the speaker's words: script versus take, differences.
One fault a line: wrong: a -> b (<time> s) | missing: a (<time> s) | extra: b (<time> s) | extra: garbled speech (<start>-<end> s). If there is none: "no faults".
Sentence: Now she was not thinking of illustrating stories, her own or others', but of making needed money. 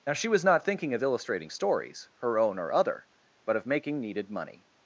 wrong: others -> other (2.7 s)